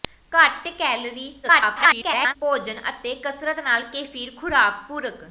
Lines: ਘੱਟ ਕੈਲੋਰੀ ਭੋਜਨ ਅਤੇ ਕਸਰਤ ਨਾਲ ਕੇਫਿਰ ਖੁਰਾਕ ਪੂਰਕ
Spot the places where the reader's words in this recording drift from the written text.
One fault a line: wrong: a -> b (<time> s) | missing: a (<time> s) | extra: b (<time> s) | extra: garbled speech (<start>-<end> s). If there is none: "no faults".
extra: garbled speech (1.4-2.4 s)